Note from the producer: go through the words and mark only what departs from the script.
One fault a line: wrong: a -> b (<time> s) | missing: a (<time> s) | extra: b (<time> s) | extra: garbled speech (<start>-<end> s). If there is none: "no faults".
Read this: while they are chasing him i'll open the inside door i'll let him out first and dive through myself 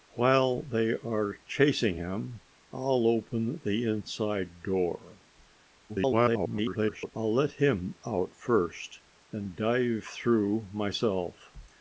extra: garbled speech (5.9-7.1 s)